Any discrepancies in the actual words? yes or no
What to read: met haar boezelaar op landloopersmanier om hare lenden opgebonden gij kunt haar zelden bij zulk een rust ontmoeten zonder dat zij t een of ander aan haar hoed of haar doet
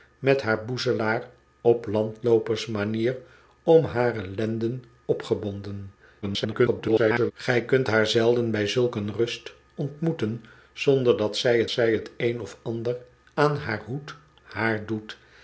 yes